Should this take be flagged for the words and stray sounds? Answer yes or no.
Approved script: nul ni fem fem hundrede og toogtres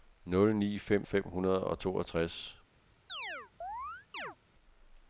yes